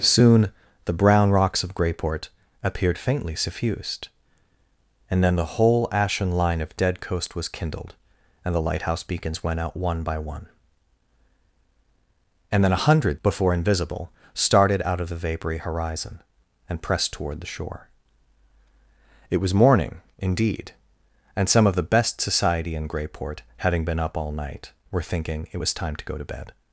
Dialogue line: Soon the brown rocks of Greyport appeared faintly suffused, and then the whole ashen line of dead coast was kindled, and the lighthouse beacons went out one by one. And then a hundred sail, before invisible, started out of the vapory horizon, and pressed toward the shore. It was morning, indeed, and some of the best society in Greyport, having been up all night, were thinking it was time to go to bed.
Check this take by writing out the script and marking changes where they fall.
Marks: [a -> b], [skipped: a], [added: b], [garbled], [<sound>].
Soon the brown rocks of Greyport appeared faintly suffused, and then the whole ashen line of dead coast was kindled, and the lighthouse beacons went out one by one. And then a hundred [skipped: sail,] before invisible, started out of the vapory horizon, and pressed toward the shore. It was morning, indeed, and some of the best society in Greyport, having been up all night, were thinking it was time to go to bed.